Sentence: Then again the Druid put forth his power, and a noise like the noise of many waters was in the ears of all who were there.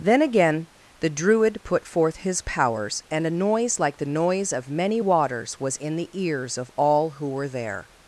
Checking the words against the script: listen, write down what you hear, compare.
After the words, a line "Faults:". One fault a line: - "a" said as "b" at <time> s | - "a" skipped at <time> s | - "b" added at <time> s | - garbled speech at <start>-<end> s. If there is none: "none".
Then again the Druid put forth his powers, and a noise like the noise of many waters was in the ears of all who were there.
Faults:
- "power" said as "powers" at 2.4 s